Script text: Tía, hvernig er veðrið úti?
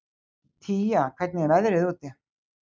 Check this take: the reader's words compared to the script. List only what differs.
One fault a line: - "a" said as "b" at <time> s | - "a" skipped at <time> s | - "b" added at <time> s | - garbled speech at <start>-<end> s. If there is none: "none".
none